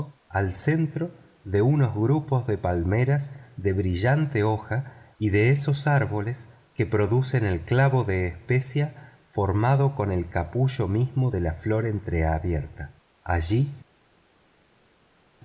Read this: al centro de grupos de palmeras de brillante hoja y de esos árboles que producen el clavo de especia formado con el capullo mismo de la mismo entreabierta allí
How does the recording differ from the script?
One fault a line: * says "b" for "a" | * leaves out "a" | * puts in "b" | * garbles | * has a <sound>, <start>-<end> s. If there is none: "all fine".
* puts in "unos"
* says "flor" for "mismo"